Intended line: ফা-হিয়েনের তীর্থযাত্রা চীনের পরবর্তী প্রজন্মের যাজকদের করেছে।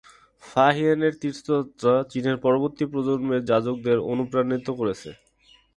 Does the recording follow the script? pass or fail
fail